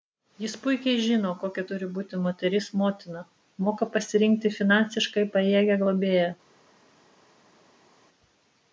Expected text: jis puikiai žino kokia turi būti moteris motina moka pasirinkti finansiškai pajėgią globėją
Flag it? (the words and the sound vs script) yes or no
no